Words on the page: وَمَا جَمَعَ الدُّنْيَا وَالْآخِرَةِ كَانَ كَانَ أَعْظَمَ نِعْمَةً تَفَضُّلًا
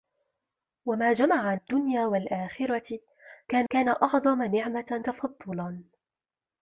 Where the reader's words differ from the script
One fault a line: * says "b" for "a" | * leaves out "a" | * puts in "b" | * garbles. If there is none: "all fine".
all fine